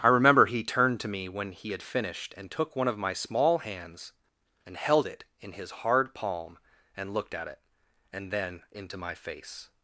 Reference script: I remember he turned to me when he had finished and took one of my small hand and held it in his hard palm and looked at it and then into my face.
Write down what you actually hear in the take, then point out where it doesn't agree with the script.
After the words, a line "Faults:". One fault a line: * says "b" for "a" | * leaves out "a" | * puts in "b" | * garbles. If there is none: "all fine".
I remember he turned to me when he had finished and took one of my small hands and held it in his hard palm and looked at it and then into my face.
Faults:
* says "hands" for "hand"